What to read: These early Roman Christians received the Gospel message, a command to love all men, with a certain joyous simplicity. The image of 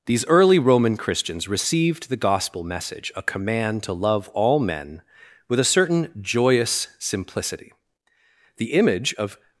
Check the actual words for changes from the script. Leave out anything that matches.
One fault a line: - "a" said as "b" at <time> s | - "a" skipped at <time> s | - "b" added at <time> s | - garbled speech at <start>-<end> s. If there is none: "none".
none